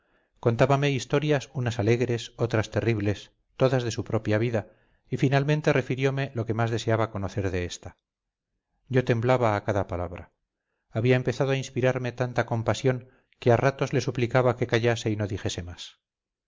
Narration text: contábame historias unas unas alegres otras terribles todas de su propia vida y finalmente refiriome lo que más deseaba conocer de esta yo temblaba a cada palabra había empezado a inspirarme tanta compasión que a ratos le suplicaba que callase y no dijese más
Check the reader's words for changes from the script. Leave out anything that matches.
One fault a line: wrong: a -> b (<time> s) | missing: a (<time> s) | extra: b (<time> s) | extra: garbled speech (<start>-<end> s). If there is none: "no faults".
missing: unas (1.8 s)